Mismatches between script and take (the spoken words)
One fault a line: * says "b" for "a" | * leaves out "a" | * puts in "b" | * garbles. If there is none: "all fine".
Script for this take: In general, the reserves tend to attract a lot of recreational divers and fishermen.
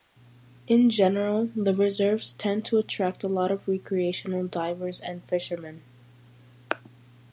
all fine